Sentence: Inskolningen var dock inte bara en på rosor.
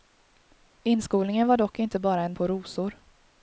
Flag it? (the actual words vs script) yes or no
no